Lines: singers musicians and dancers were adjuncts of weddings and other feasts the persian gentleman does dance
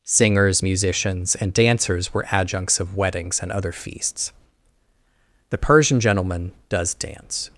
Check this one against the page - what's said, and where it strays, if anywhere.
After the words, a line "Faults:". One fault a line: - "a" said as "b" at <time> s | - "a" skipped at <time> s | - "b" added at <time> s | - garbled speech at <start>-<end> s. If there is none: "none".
singers musicians and dancers were adjuncts of weddings and other feasts the persian gentleman does dance
Faults:
none